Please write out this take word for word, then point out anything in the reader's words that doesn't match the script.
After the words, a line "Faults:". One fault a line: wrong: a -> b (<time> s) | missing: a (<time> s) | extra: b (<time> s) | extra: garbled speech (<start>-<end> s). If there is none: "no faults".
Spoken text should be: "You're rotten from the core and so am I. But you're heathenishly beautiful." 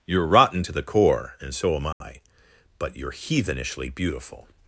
"You're rotten to the core and so am I. But you're heathenishly beautiful."
Faults:
wrong: from -> to (0.6 s)